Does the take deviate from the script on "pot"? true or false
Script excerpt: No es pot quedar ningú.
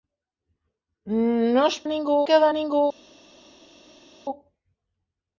true